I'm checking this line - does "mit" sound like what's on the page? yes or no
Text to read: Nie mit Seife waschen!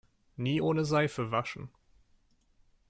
no